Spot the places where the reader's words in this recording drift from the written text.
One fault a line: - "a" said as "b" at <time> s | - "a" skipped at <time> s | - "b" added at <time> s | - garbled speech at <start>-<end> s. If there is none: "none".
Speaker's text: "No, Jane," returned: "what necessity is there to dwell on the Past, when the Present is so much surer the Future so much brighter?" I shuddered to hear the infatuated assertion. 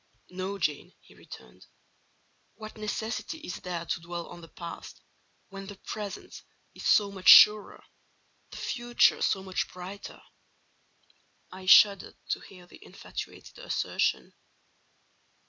- "he" added at 1.0 s